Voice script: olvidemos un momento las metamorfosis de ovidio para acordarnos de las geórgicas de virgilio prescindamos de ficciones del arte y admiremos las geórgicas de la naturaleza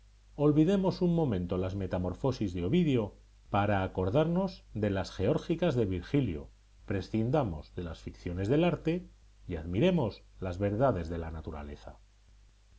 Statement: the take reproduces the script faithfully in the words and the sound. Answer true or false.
false